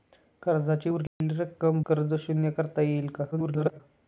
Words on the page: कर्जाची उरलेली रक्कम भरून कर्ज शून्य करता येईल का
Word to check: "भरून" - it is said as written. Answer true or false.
false